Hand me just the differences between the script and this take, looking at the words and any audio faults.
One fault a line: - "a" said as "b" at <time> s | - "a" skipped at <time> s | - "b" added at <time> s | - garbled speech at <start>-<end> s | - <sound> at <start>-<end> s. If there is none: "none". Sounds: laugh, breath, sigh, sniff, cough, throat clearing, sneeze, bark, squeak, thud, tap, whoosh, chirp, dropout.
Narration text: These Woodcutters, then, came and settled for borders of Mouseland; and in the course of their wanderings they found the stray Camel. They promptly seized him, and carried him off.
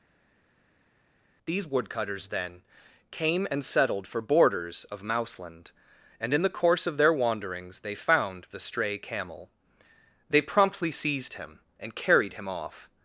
none